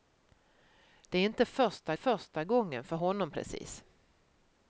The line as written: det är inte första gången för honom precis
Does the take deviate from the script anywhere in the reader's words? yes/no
yes